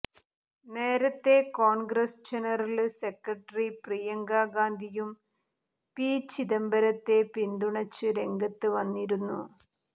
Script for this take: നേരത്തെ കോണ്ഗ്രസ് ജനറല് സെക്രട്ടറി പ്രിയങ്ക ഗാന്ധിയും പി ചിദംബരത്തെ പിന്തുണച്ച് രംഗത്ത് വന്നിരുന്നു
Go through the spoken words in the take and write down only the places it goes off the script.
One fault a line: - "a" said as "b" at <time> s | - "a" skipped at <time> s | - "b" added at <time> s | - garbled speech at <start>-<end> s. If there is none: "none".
none